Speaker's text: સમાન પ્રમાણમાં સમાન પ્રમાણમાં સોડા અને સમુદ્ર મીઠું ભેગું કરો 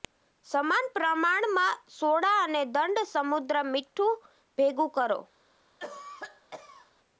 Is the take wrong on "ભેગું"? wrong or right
right